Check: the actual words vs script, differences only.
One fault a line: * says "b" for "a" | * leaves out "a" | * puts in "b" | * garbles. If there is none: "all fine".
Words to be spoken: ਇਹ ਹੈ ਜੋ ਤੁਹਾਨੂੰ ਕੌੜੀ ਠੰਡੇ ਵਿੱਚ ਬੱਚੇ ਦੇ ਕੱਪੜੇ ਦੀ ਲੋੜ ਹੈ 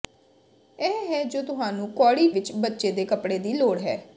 * leaves out "ਠੰਡੇ"